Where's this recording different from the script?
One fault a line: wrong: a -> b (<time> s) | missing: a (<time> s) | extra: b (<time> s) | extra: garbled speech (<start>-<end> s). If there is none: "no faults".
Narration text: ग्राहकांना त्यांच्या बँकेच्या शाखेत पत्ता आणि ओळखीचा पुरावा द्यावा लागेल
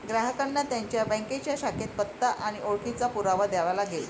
no faults